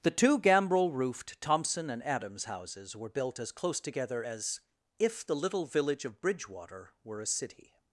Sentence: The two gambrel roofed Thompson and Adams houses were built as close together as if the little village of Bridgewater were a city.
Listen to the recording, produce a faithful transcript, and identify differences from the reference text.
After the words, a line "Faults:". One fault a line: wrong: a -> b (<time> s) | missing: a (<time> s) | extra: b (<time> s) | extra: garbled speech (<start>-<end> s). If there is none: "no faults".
The two gambrel roofed Thompson and Adams houses were built as close together as if the little village of Bridgewater were a city.
Faults:
no faults